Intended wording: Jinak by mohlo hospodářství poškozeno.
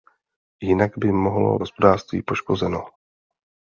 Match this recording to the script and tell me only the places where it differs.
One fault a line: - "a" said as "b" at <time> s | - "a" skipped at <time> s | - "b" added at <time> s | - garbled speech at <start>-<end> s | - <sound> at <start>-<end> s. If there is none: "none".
none